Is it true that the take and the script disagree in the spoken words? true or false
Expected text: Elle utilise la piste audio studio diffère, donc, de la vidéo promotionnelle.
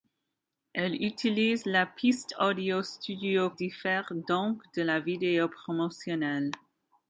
false